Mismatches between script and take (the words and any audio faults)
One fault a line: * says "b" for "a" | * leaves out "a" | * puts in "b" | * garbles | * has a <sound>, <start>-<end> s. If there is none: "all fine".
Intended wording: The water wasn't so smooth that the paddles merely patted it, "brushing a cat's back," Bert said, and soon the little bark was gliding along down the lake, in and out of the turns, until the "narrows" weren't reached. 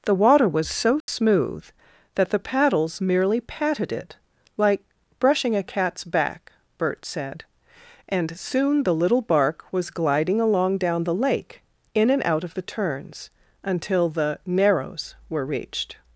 * says "was" for "wasn't"
* has a dropout, 1.0-1.1 s
* puts in "like"
* says "were" for "weren't"